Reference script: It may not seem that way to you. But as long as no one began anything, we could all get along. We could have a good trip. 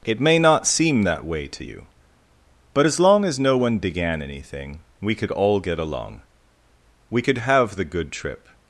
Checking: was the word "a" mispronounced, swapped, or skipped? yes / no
yes